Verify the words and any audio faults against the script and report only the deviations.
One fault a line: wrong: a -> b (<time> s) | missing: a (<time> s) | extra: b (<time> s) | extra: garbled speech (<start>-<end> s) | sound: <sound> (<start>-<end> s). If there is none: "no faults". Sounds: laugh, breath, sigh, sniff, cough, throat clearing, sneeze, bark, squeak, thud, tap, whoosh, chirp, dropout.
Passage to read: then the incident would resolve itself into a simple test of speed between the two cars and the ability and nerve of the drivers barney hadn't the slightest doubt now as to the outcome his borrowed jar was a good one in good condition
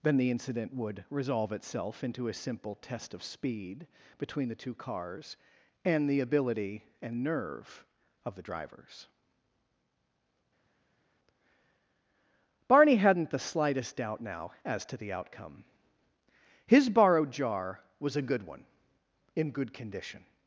no faults